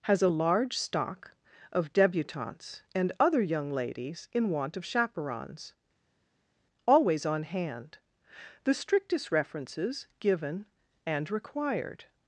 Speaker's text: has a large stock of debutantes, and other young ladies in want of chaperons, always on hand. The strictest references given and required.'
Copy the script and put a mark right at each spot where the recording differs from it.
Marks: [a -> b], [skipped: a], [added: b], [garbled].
has a large stock of debutantes, and other young ladies in want of chaperons, always on hand. The strictest references given and required.'